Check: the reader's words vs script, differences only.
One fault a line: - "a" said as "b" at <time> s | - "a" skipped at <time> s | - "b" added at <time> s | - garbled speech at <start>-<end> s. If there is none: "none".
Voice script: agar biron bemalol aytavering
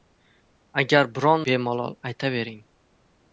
none